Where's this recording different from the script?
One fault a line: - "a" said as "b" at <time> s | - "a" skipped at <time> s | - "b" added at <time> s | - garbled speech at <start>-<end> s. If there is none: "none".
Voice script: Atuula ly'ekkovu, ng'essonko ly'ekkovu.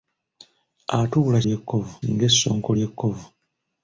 none